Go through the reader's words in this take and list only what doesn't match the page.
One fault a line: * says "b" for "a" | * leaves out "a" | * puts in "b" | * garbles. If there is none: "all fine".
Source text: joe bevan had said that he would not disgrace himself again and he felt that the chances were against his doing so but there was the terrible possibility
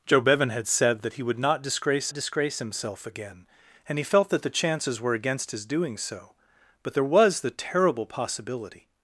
* puts in "disgrace"